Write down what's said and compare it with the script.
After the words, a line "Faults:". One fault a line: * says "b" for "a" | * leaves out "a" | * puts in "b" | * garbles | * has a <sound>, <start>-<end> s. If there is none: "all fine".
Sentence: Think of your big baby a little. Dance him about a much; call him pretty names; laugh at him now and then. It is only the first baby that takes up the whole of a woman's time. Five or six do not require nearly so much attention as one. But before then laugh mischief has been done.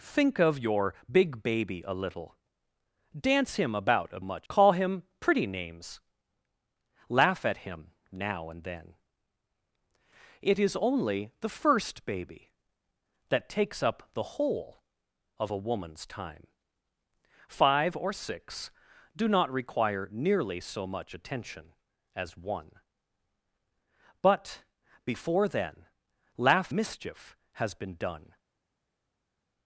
Think of your big baby a little. Dance him about a much; call him pretty names; laugh at him now and then. It is only the first baby that takes up the whole of a woman's time. Five or six do not require nearly so much attention as one. But before then laugh mischief has been done.
Faults:
all fine